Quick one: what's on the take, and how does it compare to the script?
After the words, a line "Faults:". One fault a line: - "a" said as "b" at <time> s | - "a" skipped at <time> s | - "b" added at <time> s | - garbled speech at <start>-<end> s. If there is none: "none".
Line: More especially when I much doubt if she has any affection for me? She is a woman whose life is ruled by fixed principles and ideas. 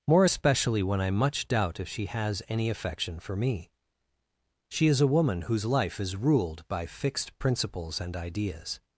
More especially when I much doubt if she has any affection for me? She is a woman whose life is ruled by fixed principles and ideas.
Faults:
none